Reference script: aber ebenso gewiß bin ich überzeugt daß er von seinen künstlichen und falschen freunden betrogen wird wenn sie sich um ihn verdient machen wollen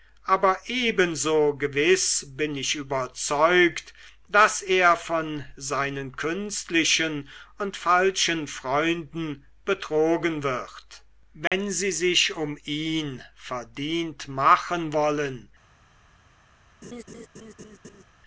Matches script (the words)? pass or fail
pass